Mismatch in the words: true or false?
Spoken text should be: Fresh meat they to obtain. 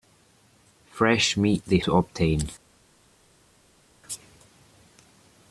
false